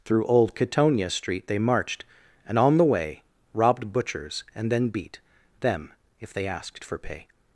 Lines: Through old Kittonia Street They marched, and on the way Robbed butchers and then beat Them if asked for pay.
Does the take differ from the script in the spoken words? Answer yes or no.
yes